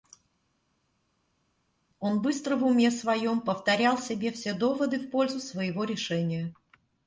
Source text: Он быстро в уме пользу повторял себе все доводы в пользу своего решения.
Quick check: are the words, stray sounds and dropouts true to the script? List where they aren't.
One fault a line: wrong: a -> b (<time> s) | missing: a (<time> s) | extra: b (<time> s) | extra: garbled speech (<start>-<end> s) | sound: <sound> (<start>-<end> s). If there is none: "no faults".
wrong: пользу -> своем (2.9 s)